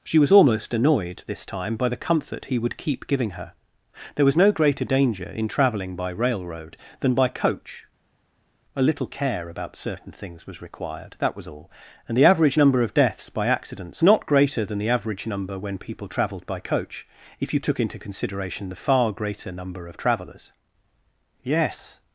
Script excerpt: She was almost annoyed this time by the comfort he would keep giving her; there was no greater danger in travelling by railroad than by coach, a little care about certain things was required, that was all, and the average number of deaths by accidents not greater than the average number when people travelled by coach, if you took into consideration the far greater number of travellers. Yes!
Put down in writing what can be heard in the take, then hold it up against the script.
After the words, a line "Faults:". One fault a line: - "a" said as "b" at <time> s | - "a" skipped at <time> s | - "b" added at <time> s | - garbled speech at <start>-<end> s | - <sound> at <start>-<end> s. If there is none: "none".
She was almost annoyed this time by the comfort he would keep giving her; there was no greater danger in travelling by railroad than by coach, a little care about certain things was required, that was all, and the average number of deaths by accidents not greater than the average number when people travelled by coach, if you took into consideration the far greater number of travellers. Yes!
Faults:
none